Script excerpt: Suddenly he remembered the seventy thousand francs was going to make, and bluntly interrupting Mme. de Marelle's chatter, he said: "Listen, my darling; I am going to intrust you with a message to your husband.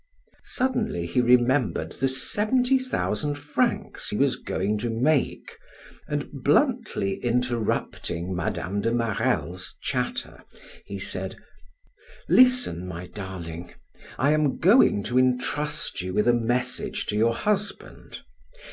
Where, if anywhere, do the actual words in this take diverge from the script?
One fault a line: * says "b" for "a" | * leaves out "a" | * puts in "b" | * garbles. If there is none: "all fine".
all fine